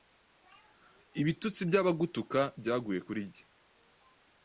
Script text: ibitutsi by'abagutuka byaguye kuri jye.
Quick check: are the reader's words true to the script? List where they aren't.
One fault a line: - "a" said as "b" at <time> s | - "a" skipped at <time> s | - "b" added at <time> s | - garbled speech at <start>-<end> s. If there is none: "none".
none